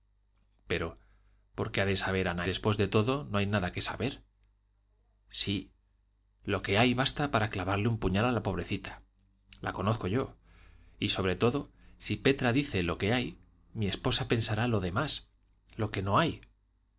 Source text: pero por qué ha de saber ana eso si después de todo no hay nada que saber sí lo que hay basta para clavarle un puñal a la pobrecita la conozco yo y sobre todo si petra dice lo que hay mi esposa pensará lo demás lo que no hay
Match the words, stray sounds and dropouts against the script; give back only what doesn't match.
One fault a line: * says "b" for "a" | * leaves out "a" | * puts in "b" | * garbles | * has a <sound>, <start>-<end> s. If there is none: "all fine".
* leaves out "eso si"